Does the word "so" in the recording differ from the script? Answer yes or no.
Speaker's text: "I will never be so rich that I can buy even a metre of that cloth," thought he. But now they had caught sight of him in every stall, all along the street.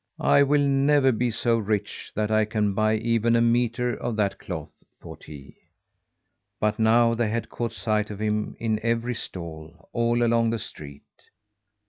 no